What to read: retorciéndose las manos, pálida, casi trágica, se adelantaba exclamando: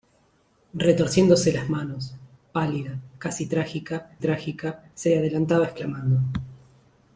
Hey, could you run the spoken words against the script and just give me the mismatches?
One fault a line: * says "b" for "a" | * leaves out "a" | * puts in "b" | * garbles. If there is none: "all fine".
* puts in "trágica"